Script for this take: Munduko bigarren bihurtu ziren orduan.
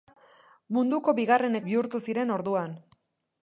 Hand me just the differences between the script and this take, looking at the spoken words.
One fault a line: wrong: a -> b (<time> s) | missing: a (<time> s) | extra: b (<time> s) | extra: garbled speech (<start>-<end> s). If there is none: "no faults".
no faults